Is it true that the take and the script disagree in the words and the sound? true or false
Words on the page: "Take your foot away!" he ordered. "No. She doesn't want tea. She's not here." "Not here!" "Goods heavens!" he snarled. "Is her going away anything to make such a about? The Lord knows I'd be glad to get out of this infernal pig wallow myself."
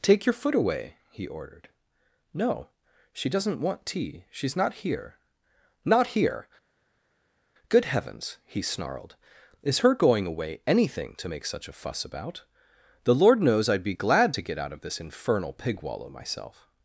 true